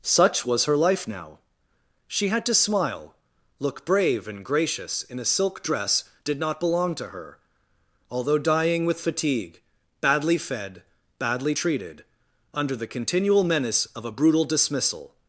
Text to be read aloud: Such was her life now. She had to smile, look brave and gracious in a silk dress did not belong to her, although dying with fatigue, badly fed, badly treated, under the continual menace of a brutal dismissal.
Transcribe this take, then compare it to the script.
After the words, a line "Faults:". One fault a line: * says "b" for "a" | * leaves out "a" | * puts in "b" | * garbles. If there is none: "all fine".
Such was her life now. She had to smile, look brave and gracious in a silk dress did not belong to her, although dying with fatigue, badly fed, badly treated, under the continual menace of a brutal dismissal.
Faults:
all fine